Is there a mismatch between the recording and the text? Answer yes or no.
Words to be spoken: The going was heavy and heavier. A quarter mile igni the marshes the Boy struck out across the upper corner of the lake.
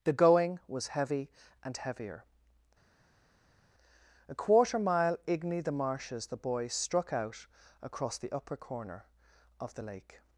no